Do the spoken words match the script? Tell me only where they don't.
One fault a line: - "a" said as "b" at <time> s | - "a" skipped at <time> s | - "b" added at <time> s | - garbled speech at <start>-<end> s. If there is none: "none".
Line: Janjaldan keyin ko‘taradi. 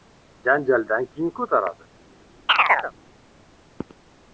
none